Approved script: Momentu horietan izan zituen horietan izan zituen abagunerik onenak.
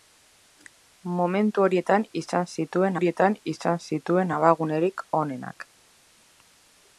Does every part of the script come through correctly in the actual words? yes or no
yes